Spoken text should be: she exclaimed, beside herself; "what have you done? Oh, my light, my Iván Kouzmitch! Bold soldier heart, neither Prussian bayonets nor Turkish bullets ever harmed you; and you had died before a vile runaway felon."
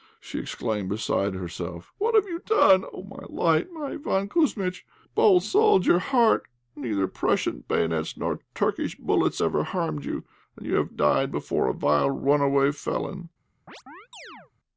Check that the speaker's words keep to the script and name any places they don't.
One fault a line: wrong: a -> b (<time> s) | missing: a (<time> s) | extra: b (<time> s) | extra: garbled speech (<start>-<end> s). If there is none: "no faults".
wrong: had -> have (10.8 s)